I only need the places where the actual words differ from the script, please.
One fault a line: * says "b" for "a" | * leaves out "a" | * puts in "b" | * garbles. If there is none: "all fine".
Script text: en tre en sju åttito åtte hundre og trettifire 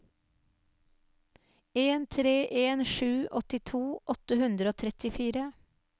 all fine